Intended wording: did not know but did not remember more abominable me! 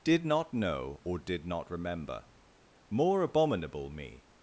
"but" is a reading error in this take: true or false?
true